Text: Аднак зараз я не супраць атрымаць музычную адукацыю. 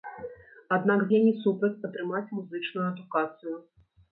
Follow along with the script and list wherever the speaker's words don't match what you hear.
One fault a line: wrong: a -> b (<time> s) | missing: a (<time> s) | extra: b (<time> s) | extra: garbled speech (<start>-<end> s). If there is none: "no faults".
missing: зараз (1.0 s)